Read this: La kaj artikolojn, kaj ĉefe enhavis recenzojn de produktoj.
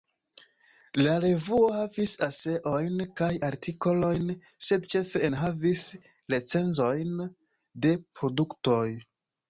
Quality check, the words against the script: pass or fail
fail